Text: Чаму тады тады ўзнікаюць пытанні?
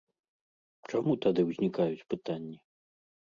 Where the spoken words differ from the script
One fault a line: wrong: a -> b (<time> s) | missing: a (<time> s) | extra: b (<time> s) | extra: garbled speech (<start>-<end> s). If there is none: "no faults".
missing: тады (1.4 s)